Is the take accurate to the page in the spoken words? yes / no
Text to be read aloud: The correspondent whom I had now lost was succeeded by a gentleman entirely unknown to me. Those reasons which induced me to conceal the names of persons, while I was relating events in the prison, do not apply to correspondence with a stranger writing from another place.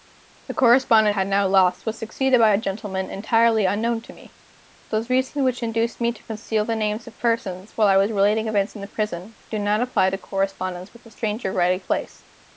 no